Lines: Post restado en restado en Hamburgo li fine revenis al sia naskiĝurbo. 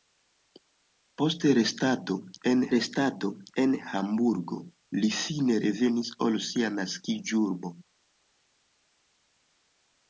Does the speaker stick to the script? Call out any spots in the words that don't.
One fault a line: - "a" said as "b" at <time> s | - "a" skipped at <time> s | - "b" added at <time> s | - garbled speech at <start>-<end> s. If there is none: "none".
none